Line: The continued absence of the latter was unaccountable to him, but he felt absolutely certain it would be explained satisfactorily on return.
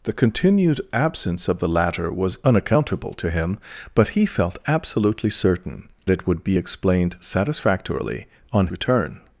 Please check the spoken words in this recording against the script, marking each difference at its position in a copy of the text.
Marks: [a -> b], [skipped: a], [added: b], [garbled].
The continued absence of the latter was unaccountable to him, but he felt absolutely certain it would be explained satisfactorily on return.